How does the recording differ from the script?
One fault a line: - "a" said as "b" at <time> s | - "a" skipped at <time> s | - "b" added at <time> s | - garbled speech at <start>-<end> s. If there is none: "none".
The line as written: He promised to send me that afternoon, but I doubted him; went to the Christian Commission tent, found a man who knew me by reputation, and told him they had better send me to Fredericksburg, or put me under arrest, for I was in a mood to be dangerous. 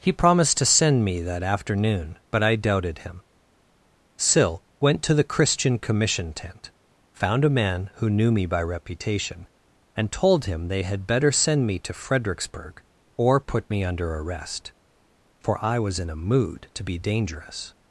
- "sill" added at 4.2 s